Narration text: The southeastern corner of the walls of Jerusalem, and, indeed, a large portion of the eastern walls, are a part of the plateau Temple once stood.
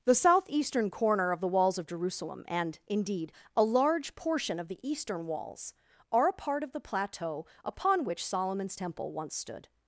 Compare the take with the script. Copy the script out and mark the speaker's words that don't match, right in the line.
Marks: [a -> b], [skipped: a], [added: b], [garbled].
The southeastern corner of the walls of Jerusalem, and, indeed, a large portion of the eastern walls, are a part of the plateau [added: upon which Solomon's] Temple once stood.